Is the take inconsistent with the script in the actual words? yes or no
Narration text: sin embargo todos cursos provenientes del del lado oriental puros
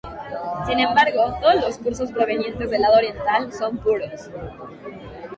yes